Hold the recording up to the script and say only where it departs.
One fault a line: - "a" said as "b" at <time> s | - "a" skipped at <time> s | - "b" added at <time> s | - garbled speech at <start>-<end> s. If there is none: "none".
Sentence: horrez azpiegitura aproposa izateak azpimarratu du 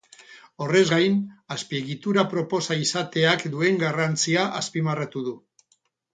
- "gain" added at 0.9 s
- "duen garrantzia" added at 3.5 s